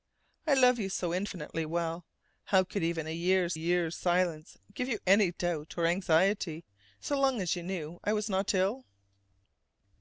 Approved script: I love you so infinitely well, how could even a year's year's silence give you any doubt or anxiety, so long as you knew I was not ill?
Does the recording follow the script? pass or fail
pass